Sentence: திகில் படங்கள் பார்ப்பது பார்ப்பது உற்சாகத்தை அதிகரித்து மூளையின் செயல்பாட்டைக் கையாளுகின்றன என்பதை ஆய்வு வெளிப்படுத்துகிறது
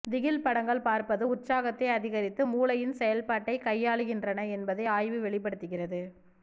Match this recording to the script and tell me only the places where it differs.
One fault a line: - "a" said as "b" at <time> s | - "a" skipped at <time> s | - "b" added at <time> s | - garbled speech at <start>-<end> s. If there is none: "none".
- "பார்ப்பது" skipped at 1.3 s